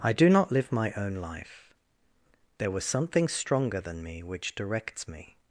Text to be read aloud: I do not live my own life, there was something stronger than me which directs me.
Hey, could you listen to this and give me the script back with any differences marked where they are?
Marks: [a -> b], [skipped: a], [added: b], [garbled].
I do not live my own life, there was something stronger than me which directs me.